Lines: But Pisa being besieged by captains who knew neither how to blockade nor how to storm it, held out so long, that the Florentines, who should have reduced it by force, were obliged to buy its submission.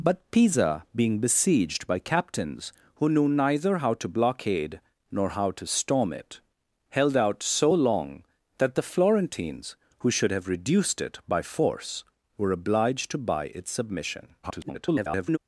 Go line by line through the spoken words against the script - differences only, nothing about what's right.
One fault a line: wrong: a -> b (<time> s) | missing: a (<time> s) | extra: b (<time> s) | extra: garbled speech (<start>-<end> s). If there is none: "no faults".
extra: garbled speech (14.4-15.4 s)